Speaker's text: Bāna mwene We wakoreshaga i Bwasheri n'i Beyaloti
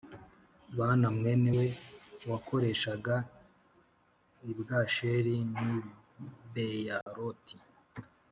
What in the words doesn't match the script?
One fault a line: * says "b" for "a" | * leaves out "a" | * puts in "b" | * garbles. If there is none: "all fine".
all fine